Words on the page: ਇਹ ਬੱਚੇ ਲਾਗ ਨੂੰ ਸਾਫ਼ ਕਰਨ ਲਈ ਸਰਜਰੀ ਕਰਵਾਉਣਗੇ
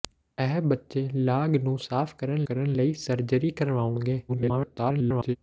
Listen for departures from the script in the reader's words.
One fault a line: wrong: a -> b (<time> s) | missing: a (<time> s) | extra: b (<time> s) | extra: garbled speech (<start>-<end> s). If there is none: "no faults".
extra: ਕਰਨ (2.4 s)
extra: garbled speech (4.3-5.4 s)